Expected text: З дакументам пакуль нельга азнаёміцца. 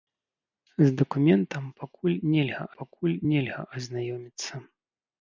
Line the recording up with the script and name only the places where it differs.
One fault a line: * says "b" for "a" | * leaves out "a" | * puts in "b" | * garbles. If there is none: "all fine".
* puts in "пакуль нельга"